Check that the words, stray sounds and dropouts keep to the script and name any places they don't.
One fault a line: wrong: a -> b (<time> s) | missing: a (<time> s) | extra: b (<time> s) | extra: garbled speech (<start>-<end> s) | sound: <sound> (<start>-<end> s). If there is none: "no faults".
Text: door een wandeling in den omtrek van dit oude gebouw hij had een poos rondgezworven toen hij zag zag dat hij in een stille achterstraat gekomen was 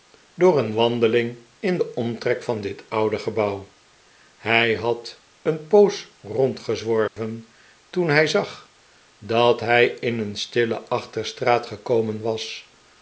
sound: dropout (7.1-7.2 s)
missing: zag (8.7 s)